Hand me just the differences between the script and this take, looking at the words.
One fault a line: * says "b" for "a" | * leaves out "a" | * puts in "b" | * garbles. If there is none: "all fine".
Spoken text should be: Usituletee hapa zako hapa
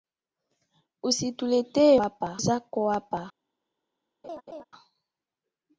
all fine